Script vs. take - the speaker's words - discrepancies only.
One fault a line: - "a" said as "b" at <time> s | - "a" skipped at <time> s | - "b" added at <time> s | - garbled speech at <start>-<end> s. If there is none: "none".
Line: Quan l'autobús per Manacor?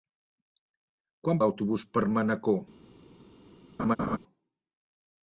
none